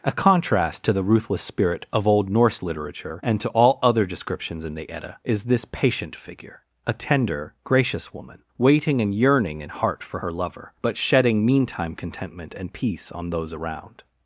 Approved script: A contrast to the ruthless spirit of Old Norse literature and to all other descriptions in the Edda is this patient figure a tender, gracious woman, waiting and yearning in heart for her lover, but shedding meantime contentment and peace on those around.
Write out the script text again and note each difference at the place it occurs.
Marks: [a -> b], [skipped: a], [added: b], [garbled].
A contrast to the ruthless spirit of Old Norse literature and to all other descriptions in the Edda is this patient figure a tender, gracious woman, waiting and yearning in heart for her lover, but shedding meantime contentment and peace on those around.